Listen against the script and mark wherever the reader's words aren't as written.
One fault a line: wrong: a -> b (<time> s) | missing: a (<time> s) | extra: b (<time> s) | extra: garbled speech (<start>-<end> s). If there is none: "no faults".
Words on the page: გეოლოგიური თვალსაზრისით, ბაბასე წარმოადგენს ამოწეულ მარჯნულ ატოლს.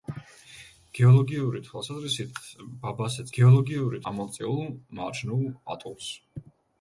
wrong: წარმოადგენს -> გეოლოგიური (3.4 s)